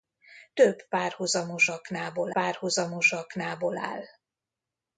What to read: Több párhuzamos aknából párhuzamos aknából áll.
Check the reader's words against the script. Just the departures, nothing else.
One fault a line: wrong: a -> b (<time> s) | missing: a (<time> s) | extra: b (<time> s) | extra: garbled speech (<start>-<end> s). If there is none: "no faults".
no faults